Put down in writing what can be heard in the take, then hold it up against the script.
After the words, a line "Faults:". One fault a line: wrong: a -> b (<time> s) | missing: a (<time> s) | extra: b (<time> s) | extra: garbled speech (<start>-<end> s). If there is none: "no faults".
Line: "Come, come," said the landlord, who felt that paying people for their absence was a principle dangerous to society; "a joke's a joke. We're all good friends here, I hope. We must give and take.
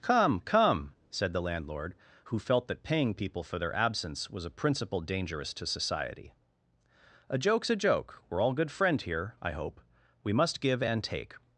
"Come, come," said the landlord, who felt that paying people for their absence was a principle dangerous to society; "a joke's a joke. We're all good friend here, I hope. We must give and take.
Faults:
wrong: friends -> friend (8.7 s)